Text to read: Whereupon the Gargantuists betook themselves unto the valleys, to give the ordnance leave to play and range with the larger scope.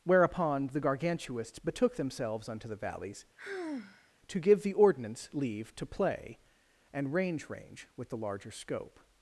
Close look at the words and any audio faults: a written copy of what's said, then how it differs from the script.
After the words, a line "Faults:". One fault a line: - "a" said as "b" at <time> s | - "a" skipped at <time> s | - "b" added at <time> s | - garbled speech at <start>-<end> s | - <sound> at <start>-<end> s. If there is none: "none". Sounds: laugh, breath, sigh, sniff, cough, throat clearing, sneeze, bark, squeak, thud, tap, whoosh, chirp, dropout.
Whereupon the Gargantuists betook themselves unto the valleys, to give the ordnance leave to play and range range with the larger scope.
Faults:
- sigh at 3.4-4.1 s
- "range" added at 7.5 s